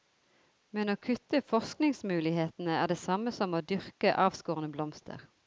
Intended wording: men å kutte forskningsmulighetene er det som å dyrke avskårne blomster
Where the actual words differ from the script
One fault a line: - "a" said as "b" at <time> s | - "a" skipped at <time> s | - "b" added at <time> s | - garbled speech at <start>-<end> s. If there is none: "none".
- "samme" added at 3.0 s